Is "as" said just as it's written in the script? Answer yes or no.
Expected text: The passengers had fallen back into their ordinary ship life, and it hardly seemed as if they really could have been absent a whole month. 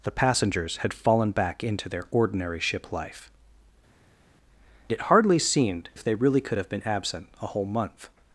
no